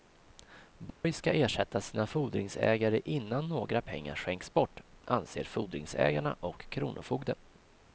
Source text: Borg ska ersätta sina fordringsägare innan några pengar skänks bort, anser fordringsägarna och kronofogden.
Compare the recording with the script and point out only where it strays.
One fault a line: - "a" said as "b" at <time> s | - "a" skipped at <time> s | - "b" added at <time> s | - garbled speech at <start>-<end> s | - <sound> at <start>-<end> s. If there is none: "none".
- dropout at 0.9-1.0 s